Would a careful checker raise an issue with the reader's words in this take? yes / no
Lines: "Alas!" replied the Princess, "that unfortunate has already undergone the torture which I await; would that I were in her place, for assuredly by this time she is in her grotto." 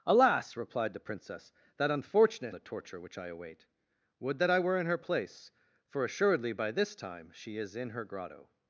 yes